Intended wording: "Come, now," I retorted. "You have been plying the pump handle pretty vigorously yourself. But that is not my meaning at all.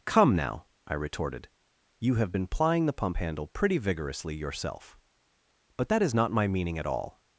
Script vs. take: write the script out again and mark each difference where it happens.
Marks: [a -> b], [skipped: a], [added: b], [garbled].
"Come, now," I retorted. "You have been plying the pump handle pretty vigorously yourself. But that is not my meaning at all.